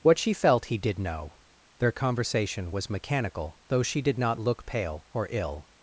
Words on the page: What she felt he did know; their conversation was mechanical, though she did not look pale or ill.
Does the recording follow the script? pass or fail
pass